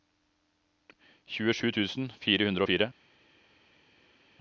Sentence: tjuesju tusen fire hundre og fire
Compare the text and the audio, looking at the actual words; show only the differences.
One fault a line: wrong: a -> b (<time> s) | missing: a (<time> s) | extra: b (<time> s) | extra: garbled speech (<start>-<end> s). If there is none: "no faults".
no faults